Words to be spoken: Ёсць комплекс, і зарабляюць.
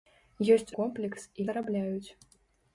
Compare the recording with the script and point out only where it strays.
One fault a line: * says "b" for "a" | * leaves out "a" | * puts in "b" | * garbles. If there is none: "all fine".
all fine